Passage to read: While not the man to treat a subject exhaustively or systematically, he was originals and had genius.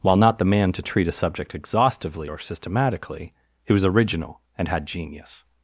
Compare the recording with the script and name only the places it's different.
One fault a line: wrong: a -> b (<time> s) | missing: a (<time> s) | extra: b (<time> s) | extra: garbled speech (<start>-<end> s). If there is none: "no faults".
wrong: originals -> original (3.8 s)